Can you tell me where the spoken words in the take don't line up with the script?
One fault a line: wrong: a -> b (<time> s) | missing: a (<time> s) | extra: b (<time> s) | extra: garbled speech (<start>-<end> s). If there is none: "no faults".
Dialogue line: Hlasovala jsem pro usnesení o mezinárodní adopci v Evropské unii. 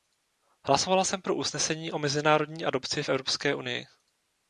no faults